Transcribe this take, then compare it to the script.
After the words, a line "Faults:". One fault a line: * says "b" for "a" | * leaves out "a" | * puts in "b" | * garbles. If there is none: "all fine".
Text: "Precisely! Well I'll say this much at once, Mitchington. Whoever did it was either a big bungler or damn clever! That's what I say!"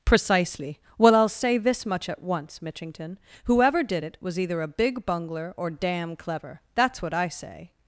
"Precisely! Well I'll say this much at once, Mitchington. Whoever did it was either a big bungler or damn clever! That's what I say!"
Faults:
all fine